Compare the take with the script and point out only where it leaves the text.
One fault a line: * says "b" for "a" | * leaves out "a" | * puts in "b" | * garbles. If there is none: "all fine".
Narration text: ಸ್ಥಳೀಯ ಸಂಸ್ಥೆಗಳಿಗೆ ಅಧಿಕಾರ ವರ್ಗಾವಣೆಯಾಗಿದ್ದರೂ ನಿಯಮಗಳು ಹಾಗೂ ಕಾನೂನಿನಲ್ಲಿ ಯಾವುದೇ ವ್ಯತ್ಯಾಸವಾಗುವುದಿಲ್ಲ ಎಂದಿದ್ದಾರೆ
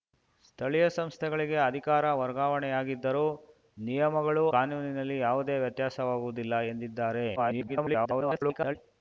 * leaves out "ಹಾಗೂ"
* garbles